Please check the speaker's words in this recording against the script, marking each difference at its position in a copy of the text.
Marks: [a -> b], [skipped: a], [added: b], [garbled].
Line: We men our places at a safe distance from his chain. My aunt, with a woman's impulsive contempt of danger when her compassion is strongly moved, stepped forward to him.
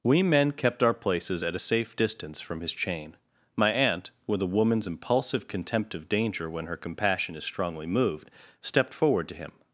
We men [added: kept] our places at a safe distance from his chain. My aunt, with a woman's impulsive contempt of danger when her compassion is strongly moved, stepped forward to him.